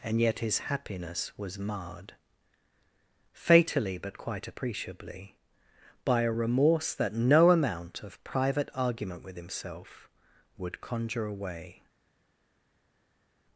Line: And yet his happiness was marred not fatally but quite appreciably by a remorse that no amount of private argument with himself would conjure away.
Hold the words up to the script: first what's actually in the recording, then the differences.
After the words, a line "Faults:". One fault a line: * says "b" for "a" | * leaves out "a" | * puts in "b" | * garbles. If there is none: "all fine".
And yet his happiness was marred fatally but quite appreciably by a remorse that no amount of private argument with himself would conjure away.
Faults:
* leaves out "not"